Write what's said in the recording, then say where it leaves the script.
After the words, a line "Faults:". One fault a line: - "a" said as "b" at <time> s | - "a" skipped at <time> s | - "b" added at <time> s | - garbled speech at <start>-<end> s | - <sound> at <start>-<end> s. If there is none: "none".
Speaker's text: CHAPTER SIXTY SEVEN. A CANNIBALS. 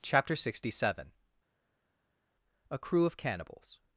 CHAPTER SIXTY SEVEN. A CREW OF CANNIBALS.
Faults:
- "CREW OF" added at 2.8 s